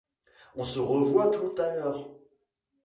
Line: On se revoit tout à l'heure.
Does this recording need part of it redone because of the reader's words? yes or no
no